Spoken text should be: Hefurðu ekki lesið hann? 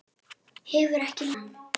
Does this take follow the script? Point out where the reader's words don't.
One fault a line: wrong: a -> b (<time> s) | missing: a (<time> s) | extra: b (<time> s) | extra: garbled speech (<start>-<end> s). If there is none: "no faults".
missing: lesið (1.3 s)